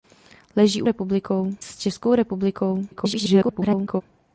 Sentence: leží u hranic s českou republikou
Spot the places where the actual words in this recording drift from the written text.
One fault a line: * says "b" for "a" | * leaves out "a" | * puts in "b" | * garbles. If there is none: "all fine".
* says "republikou" for "hranic"
* garbles